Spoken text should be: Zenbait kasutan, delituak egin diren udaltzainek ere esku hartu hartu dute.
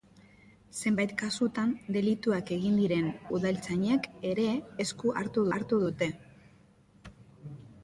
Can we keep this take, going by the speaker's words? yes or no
yes